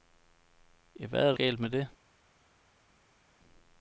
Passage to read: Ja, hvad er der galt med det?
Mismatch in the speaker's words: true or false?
false